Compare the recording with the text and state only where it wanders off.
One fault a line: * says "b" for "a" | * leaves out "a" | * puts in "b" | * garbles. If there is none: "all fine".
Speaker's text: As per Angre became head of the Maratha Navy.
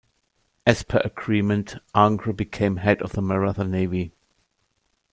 * puts in "agreement"